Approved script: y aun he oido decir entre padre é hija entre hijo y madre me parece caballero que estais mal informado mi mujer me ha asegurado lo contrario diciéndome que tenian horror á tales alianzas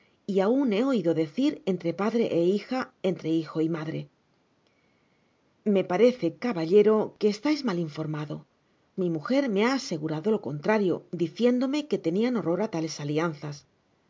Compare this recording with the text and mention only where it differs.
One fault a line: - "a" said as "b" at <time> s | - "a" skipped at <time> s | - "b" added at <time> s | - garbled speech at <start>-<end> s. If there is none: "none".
none